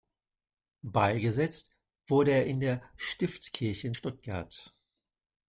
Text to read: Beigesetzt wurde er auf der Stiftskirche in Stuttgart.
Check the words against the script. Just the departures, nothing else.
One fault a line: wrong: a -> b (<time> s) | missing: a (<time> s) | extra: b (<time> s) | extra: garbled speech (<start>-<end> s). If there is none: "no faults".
wrong: auf -> in (2.5 s)